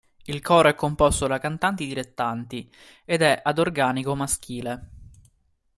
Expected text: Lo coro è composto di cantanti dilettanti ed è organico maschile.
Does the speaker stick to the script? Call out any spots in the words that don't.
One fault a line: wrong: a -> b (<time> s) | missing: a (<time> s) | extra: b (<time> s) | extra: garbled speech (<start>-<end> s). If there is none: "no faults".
wrong: Lo -> Il (0.2 s)
wrong: di -> da (1.3 s)
extra: ad (3.4 s)